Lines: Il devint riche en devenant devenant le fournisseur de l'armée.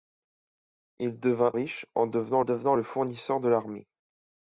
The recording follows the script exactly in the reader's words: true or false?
true